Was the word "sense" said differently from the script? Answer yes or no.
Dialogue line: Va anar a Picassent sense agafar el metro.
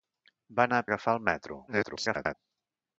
yes